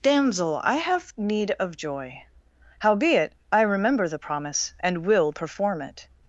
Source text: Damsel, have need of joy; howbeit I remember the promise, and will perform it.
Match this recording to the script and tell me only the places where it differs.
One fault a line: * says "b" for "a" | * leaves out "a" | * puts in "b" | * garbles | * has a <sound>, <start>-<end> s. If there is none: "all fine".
* puts in "I"